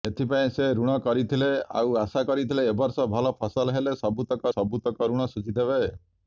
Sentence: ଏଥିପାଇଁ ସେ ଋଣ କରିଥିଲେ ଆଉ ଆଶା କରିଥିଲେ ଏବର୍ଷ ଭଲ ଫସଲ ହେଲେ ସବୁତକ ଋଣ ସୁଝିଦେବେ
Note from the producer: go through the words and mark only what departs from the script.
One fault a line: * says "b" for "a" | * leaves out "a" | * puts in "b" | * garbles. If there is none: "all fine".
* puts in "ସବୁତକ"